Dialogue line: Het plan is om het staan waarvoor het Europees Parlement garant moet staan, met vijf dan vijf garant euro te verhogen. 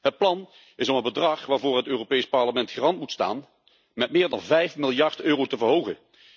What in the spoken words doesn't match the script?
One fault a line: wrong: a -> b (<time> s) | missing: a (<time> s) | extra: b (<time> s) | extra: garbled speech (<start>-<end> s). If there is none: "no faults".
wrong: staan -> bedrag (1.0 s)
wrong: vijf -> meer (4.1 s)
wrong: garant -> miljard (4.8 s)